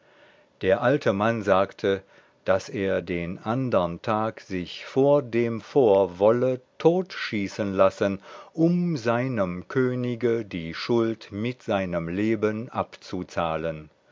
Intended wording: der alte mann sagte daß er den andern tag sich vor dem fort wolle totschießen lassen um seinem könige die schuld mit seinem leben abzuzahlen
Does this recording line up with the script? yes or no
yes